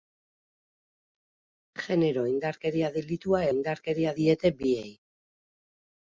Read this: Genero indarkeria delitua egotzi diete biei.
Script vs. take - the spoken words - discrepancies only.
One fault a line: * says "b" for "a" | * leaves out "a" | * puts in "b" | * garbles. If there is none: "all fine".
* says "indarkeria" for "egotzi"